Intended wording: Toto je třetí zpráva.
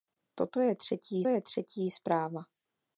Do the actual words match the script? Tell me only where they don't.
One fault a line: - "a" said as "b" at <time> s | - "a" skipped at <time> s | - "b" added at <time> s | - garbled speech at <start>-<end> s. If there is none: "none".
- "je třetí" added at 1.3 s